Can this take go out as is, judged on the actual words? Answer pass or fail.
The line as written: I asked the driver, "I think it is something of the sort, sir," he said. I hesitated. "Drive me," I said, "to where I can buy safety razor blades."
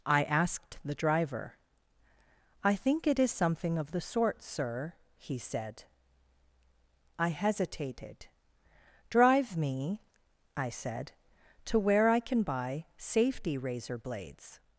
pass